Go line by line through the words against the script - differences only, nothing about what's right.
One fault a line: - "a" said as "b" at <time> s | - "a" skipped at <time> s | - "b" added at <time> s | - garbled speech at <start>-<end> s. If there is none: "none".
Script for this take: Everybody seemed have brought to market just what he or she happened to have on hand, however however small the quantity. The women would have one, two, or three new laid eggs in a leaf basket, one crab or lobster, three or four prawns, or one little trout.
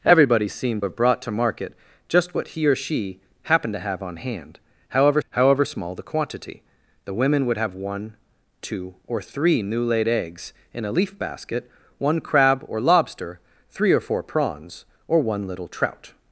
none